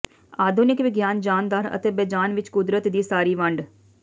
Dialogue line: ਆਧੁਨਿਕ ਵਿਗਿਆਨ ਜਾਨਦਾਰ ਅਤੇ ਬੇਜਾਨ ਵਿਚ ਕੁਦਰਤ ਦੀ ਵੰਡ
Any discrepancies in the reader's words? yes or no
yes